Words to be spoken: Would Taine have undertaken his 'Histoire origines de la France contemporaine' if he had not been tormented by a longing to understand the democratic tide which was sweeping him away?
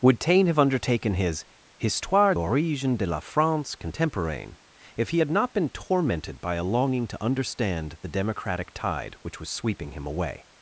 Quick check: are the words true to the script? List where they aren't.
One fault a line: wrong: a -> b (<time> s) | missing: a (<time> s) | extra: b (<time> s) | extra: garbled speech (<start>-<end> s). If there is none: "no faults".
no faults